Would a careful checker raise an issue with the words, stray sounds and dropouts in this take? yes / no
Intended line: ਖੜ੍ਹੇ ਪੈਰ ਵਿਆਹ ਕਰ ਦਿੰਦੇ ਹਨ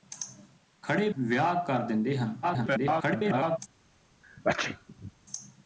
yes